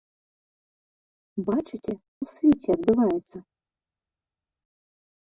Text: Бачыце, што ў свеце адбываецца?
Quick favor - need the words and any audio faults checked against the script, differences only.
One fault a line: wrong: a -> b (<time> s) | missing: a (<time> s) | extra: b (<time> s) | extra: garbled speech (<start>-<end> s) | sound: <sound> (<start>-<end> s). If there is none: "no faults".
missing: што (1.9 s)